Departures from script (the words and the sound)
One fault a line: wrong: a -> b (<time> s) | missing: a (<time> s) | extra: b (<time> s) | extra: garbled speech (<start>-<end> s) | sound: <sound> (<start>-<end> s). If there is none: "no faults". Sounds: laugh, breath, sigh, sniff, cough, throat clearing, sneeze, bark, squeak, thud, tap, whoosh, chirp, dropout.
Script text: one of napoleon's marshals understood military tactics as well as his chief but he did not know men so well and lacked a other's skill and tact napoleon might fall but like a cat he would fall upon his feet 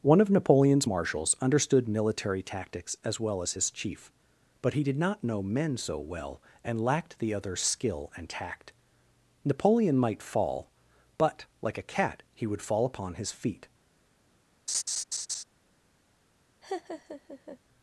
wrong: a -> the (7.2 s)
sound: laugh (14.7-15.4 s)
sound: laugh (16.6-17.6 s)